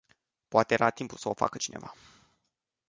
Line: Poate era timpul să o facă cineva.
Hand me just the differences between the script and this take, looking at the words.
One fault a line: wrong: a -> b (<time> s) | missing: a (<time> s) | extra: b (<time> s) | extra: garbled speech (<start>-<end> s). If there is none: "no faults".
no faults